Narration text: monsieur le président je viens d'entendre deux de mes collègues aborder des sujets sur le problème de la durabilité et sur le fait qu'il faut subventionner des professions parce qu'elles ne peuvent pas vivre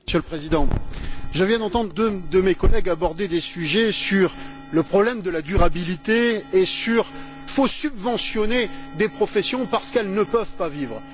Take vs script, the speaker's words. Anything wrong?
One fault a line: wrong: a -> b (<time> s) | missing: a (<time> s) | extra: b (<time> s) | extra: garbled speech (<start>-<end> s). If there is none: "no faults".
missing: le fait qu'il (7.1 s)